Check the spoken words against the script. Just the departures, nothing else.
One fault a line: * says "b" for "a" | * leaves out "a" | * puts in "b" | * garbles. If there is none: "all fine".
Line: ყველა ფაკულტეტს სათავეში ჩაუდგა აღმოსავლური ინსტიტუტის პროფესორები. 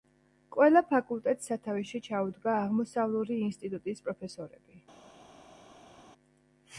all fine